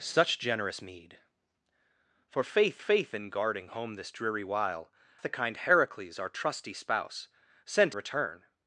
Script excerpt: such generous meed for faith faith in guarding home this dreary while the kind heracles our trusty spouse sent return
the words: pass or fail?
pass